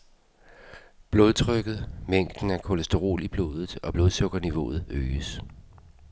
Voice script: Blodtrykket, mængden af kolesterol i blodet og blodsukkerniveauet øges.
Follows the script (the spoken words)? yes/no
yes